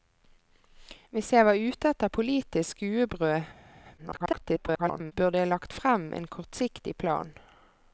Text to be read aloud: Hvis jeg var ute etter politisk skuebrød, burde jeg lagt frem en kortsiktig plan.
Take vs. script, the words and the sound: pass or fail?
fail